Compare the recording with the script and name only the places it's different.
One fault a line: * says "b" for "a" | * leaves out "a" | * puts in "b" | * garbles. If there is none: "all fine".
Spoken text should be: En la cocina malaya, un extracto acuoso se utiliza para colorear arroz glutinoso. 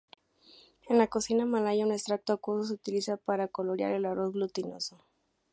* puts in "el"